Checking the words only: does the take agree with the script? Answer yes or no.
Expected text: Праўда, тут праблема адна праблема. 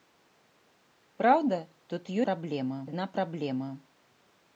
yes